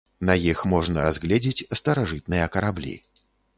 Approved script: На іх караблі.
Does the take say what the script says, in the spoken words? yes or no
no